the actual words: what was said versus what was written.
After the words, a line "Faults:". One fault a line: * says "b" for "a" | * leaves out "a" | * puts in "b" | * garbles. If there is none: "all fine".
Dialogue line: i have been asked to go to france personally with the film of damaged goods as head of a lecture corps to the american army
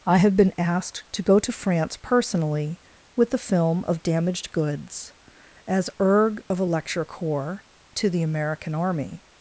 i have been asked to go to france personally with the film of damaged goods as erg of a lecture corps to the american army
Faults:
* says "erg" for "head"